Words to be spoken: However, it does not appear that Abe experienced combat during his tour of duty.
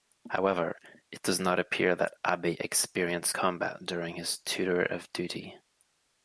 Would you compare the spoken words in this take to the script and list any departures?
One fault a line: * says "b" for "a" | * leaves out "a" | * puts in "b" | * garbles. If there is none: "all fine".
all fine